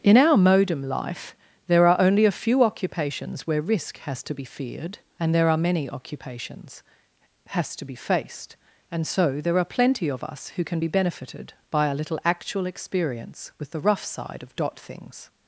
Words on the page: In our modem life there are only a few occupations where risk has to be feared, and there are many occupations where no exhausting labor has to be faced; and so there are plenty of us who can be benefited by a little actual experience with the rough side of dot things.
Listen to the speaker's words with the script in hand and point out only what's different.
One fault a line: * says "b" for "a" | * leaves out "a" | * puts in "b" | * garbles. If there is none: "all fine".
* leaves out "where no exhausting labor"